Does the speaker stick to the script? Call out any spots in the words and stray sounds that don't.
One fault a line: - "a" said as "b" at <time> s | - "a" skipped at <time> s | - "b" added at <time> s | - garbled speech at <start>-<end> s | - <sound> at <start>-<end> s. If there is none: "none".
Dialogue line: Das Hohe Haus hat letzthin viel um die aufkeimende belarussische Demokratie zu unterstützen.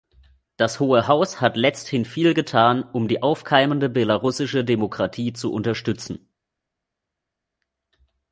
- "getan" added at 2.3 s